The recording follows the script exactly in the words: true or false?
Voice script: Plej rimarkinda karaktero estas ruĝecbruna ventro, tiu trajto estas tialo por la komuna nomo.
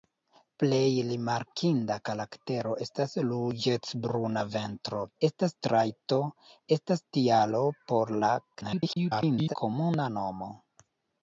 false